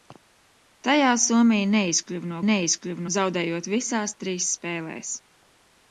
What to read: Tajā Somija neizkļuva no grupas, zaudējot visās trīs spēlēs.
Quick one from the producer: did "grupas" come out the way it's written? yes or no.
no